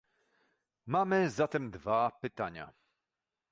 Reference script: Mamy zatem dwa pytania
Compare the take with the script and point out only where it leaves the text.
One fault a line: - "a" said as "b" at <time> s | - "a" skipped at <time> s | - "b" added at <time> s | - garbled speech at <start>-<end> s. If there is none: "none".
none